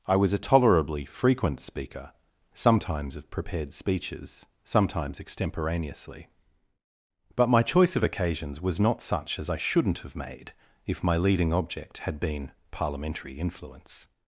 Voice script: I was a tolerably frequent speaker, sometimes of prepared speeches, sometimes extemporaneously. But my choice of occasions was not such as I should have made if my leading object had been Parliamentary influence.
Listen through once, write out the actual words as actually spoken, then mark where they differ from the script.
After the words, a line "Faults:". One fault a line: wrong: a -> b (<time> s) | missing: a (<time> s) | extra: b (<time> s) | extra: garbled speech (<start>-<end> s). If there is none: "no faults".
I was a tolerably frequent speaker, sometimes of prepared speeches, sometimes extemporaneously. But my choice of occasions was not such as I shouldn't have made if my leading object had been Parliamentary influence.
Faults:
wrong: should -> shouldn't (9.6 s)